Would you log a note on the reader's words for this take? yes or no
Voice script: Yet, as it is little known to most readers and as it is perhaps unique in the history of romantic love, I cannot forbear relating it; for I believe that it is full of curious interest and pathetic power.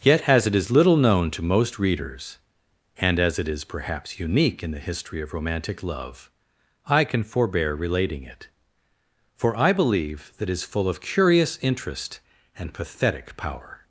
yes